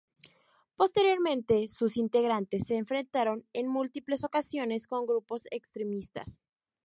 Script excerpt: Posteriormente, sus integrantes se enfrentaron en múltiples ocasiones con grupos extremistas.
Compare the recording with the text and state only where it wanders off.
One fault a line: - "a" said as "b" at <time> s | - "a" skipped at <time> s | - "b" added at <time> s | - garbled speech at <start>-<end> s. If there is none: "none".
none